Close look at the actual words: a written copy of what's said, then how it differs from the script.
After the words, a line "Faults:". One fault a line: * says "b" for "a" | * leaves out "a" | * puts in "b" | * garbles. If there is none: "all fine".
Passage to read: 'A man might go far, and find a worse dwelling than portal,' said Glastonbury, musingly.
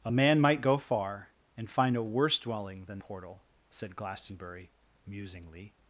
'A man might go far, and find a worse dwelling than portal,' said Glastonbury, musingly.
Faults:
all fine